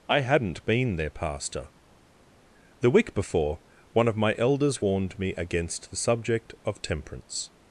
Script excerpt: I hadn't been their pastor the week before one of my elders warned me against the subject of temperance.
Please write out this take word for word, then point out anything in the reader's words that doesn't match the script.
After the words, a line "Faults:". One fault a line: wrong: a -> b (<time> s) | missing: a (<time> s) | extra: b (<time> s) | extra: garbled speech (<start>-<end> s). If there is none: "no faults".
I hadn't been their pastor the week before one of my elders warned me against the subject of temperance.
Faults:
no faults